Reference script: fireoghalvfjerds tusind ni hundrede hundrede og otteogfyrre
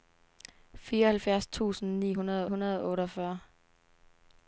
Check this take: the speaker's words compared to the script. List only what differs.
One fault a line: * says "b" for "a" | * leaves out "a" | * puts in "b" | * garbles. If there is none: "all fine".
all fine